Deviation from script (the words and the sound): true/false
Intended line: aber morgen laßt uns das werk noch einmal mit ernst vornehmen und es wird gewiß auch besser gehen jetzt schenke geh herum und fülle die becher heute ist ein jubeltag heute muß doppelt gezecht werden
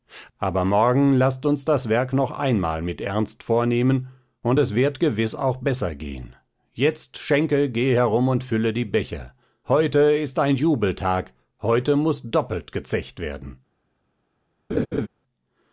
true